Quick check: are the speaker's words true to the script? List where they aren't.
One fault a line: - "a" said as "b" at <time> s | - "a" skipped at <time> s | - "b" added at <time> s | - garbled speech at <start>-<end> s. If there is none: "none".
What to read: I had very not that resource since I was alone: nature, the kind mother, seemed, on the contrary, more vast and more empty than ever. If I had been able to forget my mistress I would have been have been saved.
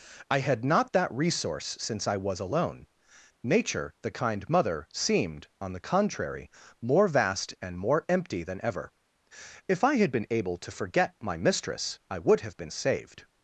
- "very" skipped at 0.7 s
- "have been" skipped at 12.7 s